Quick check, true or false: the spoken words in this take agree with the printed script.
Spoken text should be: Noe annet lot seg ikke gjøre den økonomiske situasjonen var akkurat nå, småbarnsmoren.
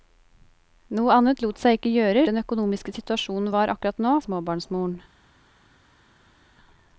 true